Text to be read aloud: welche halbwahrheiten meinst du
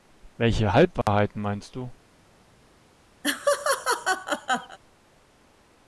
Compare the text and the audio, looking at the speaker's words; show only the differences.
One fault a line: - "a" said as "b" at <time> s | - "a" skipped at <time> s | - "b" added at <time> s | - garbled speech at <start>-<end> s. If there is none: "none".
none